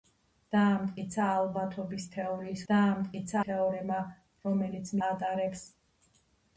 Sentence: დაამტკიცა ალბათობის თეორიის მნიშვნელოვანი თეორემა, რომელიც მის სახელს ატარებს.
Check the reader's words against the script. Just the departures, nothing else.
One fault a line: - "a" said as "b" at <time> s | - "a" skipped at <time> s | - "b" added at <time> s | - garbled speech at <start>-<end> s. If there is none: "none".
- "მნიშვნელოვანი" said as "დაამტკიცა" at 2.7 s
- "მის სახელს" skipped at 4.9 s